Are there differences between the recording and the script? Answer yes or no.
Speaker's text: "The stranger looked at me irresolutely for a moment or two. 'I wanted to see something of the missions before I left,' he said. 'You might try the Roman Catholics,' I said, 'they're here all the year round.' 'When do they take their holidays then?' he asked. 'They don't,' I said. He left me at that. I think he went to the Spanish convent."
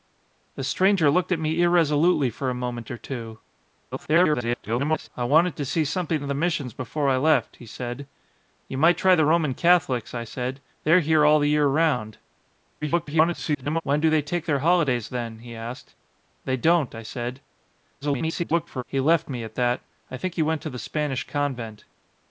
yes